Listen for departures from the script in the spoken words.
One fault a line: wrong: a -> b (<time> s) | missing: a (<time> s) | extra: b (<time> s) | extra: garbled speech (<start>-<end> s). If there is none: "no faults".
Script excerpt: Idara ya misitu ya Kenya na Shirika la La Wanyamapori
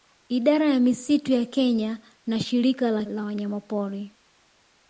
no faults